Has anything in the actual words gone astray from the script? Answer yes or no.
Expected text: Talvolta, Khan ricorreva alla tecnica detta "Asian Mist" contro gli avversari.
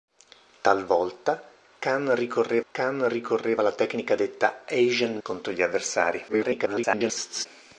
yes